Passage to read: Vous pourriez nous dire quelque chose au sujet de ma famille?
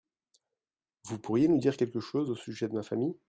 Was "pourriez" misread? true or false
false